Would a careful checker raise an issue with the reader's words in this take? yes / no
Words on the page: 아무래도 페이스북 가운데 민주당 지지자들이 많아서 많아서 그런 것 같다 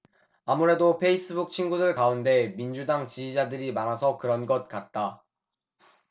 yes